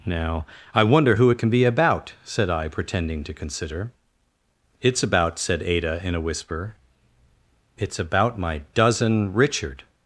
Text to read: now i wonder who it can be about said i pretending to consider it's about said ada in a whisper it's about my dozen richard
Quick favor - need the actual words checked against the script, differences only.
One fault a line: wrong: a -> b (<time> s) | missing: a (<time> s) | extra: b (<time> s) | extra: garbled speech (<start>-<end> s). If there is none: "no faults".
no faults